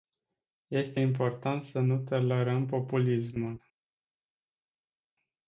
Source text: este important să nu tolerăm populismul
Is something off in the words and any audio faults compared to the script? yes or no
no